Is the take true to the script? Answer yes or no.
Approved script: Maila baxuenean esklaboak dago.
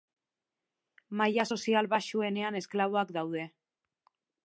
no